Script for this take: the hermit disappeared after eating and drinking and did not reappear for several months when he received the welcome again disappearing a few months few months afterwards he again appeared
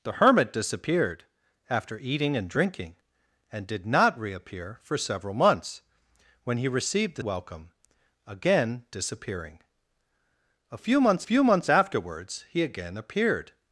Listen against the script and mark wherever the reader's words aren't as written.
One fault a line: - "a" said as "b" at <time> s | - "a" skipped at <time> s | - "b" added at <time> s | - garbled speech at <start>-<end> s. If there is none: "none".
none